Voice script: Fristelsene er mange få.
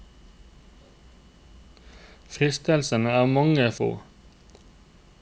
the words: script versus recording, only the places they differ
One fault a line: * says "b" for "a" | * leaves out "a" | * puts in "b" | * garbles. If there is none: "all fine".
all fine